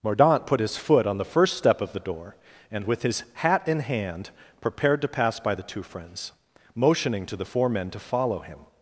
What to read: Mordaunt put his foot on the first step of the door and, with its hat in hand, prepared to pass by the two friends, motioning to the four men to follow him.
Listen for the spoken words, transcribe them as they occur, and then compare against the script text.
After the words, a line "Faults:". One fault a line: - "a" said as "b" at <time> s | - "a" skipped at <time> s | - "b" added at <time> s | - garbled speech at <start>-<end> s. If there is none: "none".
Mordaunt put his foot on the first step of the door and, with his hat in hand, prepared to pass by the two friends, motioning to the four men to follow him.
Faults:
- "its" said as "his" at 3.0 s